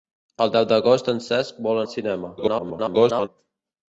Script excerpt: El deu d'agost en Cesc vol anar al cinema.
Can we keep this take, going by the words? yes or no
no